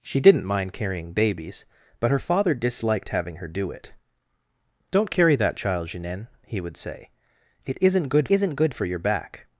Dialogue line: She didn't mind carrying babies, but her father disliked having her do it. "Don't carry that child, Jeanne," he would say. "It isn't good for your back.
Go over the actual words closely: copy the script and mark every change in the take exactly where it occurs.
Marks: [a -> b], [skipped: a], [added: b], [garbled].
She didn't mind carrying babies, but her father disliked having her do it. "Don't carry that child, Jeanne," he would say. "It isn't good [added: isn't good] for your back.